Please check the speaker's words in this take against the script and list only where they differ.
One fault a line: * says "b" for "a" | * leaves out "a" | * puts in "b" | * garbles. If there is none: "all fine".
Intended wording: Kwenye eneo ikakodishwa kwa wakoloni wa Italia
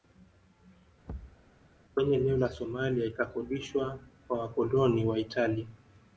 * puts in "la Somalia"